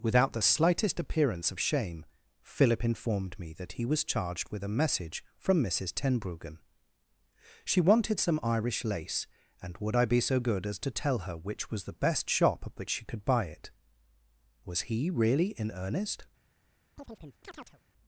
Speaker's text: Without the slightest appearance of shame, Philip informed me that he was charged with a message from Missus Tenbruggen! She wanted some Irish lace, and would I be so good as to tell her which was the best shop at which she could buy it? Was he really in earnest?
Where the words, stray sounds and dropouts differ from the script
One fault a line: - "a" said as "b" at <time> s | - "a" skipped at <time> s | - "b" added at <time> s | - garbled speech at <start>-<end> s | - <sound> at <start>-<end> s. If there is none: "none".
- chirp at 17.0-17.8 s